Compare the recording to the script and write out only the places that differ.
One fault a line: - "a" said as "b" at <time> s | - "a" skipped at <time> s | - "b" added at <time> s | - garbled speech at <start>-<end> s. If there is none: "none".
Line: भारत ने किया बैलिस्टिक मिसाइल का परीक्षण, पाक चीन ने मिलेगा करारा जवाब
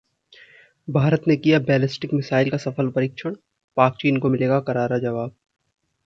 - "सफल" added at 2.6 s
- "ने" said as "को" at 4.2 s